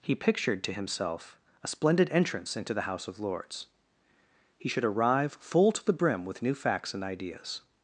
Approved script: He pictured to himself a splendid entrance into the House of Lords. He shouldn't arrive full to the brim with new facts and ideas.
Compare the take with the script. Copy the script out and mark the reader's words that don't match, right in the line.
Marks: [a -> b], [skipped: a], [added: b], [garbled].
He pictured to himself a splendid entrance into the House of Lords. He [shouldn't -> should] arrive full to the brim with new facts and ideas.